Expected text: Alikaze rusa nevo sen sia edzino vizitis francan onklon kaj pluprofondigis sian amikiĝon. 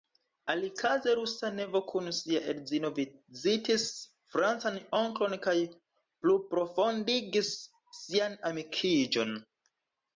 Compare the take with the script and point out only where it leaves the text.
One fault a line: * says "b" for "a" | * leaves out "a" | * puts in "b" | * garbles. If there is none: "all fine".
* says "kun" for "sen"